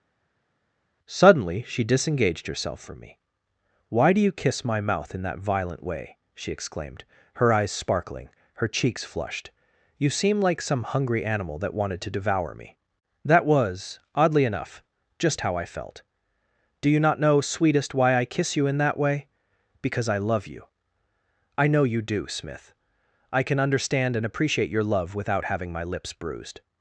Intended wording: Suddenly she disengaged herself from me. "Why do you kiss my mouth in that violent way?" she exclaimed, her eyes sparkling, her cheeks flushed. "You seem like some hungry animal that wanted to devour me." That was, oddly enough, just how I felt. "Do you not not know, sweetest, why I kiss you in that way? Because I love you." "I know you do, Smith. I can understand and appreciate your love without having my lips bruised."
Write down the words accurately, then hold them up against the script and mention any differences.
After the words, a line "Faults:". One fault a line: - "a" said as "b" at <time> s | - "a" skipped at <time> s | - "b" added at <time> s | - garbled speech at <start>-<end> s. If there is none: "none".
Suddenly she disengaged herself from me. "Why do you kiss my mouth in that violent way?" she exclaimed, her eyes sparkling, her cheeks flushed. "You seem like some hungry animal that wanted to devour me." That was, oddly enough, just how I felt. "Do you not know, sweetest, why I kiss you in that way? Because I love you." "I know you do, Smith. I can understand and appreciate your love without having my lips bruised."
Faults:
- "not" skipped at 17.2 s